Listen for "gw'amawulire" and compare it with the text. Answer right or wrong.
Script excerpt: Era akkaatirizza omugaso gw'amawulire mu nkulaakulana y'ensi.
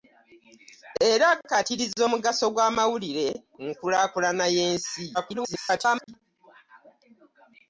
right